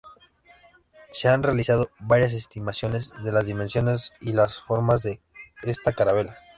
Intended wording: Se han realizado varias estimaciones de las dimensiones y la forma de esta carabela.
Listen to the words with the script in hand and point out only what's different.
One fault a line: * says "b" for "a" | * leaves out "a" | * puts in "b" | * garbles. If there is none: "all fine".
all fine